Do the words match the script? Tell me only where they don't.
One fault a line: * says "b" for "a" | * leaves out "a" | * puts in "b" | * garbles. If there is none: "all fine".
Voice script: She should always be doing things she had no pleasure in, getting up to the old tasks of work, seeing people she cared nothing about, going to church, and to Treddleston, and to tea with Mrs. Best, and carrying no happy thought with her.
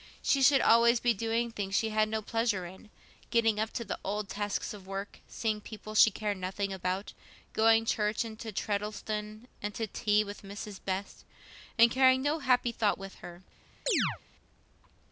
all fine